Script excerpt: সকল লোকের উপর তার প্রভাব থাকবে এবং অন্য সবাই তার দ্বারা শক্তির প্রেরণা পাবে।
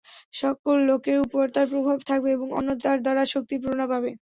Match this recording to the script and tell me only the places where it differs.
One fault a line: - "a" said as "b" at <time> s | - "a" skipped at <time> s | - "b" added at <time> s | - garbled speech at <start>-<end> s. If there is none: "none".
- "সবাই" skipped at 2.7 s